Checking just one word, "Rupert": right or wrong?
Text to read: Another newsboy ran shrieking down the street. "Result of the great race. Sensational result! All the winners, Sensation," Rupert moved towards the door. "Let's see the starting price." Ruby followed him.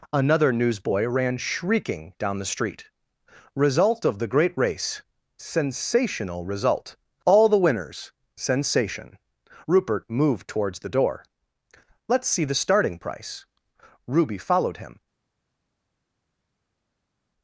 right